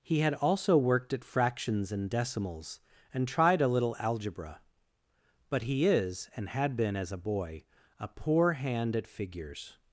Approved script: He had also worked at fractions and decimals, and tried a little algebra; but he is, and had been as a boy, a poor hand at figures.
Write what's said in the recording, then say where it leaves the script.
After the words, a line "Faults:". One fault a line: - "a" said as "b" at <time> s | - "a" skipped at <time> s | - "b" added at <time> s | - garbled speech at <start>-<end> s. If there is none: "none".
He had also worked at fractions and decimals, and tried a little algebra; but he is, and had been as a boy, a poor hand at figures.
Faults:
none